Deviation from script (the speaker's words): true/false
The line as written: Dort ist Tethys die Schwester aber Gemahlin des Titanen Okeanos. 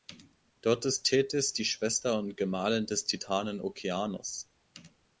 true